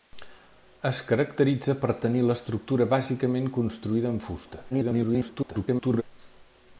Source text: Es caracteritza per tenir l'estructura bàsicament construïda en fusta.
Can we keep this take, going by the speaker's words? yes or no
no